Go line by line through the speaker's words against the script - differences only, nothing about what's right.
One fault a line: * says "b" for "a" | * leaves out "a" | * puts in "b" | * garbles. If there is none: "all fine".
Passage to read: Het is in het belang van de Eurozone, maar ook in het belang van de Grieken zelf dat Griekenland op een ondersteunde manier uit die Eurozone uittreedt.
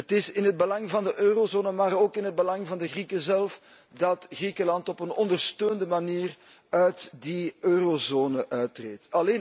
all fine